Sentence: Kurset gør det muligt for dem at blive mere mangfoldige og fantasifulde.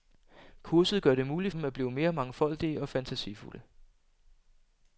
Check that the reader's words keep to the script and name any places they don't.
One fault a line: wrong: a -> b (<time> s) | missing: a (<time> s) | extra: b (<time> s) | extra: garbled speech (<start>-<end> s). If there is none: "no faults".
missing: for (1.5 s)